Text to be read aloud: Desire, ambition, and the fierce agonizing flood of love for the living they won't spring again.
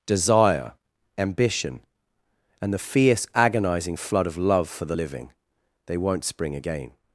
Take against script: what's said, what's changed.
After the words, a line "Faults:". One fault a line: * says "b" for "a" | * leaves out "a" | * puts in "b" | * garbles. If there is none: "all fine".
Desire, ambition, and the fierce agonizing flood of love for the living they won't spring again.
Faults:
all fine